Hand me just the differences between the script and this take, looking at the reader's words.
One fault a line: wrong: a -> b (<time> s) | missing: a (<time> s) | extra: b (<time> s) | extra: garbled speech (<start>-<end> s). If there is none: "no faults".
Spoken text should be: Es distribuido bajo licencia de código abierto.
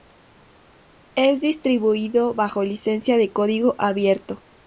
no faults